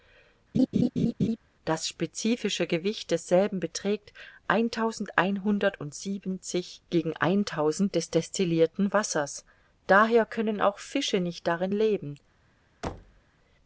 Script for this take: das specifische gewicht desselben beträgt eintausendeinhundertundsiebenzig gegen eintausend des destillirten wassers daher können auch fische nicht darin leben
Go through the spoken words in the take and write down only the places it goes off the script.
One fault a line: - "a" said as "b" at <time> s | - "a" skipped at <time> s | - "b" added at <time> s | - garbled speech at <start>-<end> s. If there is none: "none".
none